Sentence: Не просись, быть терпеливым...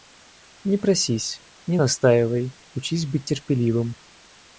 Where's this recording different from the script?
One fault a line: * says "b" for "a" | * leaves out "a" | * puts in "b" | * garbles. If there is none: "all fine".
* puts in "не настаивай учись"